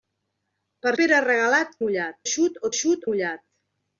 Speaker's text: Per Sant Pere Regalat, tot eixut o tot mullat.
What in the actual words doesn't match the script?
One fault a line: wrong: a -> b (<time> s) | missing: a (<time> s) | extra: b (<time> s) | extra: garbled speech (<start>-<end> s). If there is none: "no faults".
missing: Sant (0.9 s)
wrong: tot -> mullat (1.8 s)
wrong: tot -> eixut (2.7 s)